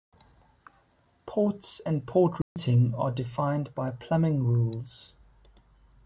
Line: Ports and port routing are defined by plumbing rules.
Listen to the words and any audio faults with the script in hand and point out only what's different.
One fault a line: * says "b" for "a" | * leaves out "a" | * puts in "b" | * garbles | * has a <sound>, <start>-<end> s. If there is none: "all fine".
* has a dropout, 2.4-2.6 s